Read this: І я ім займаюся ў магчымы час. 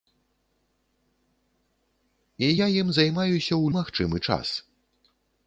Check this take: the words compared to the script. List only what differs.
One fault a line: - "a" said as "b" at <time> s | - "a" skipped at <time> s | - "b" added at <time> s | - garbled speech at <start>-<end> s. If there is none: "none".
none